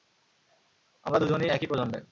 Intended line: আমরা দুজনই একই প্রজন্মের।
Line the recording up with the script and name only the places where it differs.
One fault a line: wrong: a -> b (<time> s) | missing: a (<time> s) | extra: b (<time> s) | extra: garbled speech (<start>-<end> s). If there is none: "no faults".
no faults